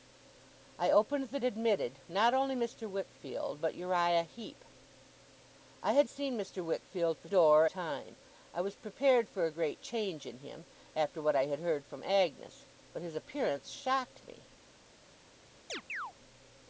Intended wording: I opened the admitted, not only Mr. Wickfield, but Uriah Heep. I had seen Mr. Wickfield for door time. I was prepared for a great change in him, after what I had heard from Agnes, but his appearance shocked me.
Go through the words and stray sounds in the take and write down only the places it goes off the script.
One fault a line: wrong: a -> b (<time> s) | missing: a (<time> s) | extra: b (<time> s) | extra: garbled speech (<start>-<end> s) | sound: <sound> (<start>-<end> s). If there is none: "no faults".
sound: chirp (15.7-16.1 s)